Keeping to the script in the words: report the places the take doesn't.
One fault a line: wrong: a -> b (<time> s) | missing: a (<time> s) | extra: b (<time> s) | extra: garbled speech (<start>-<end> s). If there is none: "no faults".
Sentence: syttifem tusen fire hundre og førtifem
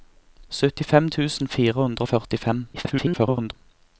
extra: garbled speech (2.7-3.5 s)